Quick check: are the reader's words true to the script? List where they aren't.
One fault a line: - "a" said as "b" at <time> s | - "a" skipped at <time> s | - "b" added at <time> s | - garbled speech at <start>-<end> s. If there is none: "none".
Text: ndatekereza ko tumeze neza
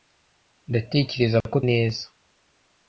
- "tumeze" skipped at 1.6 s